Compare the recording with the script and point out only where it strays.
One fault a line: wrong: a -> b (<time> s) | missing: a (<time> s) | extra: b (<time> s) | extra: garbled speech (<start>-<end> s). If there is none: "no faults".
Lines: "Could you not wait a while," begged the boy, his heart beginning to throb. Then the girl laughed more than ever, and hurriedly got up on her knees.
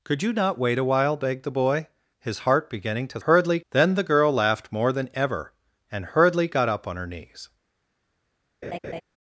wrong: throb -> hurriedly (3.2 s)